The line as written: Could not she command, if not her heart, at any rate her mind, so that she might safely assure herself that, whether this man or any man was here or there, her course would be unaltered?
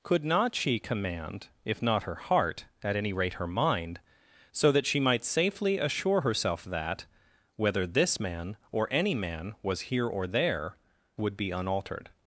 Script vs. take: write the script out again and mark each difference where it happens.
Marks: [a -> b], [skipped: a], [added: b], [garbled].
Could not she command, if not her heart, at any rate her mind, so that she might safely assure herself that, whether this man or any man was here or there, [skipped: her course] would be unaltered?